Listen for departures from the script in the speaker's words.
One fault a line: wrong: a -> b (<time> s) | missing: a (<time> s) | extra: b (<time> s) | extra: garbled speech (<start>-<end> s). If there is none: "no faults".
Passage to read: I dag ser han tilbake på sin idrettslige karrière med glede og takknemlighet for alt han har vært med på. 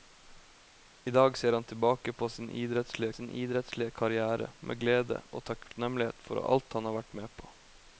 extra: sin idrettslige (3.1 s)